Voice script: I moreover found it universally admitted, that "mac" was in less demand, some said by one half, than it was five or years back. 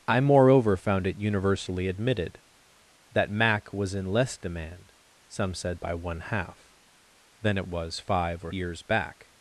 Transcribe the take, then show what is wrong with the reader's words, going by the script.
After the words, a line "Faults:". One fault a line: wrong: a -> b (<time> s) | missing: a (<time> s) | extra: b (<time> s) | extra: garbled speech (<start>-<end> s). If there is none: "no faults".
I moreover found it universally admitted, that "mac" was in less demand, some said by one half, than it was five or years back.
Faults:
no faults